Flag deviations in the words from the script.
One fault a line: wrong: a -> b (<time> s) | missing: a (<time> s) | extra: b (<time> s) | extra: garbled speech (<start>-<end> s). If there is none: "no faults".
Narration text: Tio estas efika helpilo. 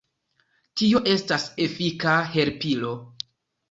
no faults